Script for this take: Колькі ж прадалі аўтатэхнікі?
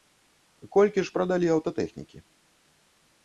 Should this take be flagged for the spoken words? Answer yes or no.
no